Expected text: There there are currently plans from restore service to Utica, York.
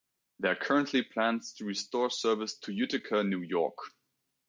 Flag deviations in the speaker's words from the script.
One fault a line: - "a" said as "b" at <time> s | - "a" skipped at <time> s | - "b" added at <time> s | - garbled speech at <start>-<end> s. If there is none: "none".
- "there" skipped at 0.5 s
- "from" said as "to" at 1.5 s
- "New" added at 3.2 s